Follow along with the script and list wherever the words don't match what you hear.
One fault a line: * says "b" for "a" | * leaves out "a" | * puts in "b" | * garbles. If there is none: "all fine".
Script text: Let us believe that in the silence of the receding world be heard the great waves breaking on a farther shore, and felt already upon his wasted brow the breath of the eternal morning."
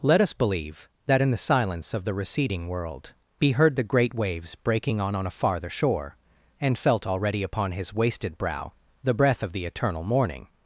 * puts in "on"